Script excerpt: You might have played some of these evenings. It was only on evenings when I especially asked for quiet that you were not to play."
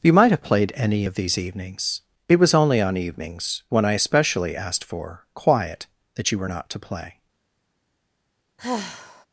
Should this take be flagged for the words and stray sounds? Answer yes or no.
yes